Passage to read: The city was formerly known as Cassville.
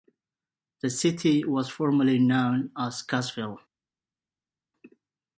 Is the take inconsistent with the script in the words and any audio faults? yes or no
no